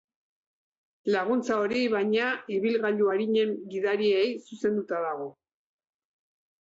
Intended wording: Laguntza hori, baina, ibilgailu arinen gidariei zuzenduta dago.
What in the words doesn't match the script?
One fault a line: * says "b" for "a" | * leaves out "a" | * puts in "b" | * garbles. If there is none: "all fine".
all fine